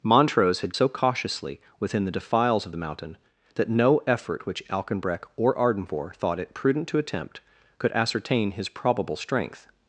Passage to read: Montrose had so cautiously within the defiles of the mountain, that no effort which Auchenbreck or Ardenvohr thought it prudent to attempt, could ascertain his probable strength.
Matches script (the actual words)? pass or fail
pass